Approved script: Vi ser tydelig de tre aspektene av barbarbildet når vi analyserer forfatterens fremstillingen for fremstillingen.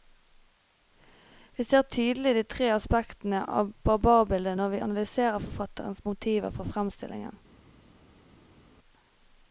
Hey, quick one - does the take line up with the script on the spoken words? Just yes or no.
no